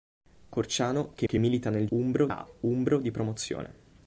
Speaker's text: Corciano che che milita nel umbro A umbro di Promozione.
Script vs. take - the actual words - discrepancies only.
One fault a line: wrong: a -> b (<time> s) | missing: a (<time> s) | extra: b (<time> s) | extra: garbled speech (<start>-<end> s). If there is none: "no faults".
no faults